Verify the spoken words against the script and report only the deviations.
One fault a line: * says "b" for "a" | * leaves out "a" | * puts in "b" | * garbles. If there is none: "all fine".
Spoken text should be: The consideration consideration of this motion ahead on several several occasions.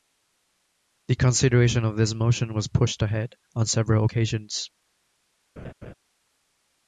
* leaves out "consideration"
* puts in "was pushed"
* leaves out "several"